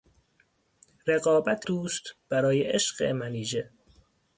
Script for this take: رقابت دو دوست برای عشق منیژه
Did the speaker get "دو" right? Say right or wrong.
wrong